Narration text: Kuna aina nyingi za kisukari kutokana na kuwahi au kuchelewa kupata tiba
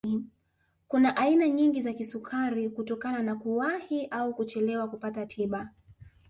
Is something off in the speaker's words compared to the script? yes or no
no